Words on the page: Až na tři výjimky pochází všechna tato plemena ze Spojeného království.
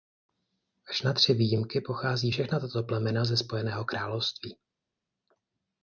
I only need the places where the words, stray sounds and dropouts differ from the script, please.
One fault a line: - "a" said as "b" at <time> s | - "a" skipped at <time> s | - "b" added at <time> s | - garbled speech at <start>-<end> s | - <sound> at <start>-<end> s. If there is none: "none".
none